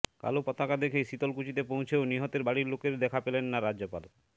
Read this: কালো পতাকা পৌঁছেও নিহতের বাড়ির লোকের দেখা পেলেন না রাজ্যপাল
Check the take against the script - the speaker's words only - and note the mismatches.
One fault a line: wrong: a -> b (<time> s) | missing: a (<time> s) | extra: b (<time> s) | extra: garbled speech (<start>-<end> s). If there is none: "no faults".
extra: দেখে শীতলকুচিতে (0.8 s)